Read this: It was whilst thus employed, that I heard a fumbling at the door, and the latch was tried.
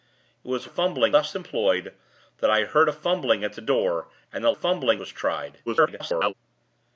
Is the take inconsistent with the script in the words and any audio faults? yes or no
yes